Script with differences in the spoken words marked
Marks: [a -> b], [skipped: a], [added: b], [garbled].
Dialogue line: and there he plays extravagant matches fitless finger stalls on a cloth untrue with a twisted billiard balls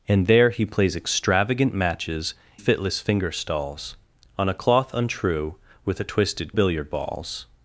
and there he plays extravagant matches fitless finger stalls on a cloth untrue with a twisted billiard balls